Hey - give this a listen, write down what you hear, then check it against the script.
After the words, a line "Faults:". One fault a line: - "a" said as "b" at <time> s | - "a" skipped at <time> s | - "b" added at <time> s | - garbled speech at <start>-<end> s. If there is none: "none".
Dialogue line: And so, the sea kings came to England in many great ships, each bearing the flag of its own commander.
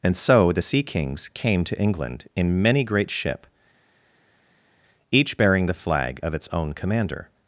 And so, the sea kings came to England in many great ship, each bearing the flag of its own commander.
Faults:
- "ships" said as "ship" at 3.1 s